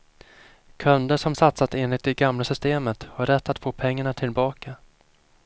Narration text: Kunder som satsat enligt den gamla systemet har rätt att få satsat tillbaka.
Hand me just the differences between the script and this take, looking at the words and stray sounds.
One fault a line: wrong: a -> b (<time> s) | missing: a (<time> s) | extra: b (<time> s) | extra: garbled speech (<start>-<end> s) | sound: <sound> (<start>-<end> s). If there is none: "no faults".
wrong: den -> det (2.0 s)
wrong: satsat -> pengarna (3.7 s)